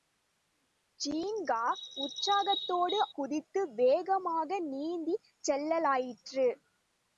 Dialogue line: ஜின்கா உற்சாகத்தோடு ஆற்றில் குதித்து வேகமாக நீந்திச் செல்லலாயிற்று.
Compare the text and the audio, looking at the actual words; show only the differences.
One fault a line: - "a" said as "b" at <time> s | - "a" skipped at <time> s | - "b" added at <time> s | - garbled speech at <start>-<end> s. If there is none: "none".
- "ஆற்றில்" skipped at 3.0 s